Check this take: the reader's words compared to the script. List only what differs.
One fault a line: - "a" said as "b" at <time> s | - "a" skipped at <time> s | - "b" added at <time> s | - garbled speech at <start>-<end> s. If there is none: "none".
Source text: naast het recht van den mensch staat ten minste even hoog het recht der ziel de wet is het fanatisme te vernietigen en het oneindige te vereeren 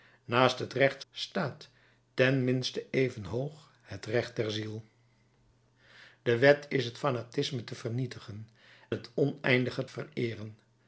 - "van den mensch" skipped at 1.0 s
- "en" skipped at 8.5 s
- "te" skipped at 9.9 s